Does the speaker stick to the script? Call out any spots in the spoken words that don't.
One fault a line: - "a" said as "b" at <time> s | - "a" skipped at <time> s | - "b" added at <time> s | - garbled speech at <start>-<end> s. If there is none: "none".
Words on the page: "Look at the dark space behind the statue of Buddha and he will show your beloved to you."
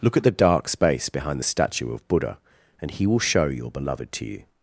none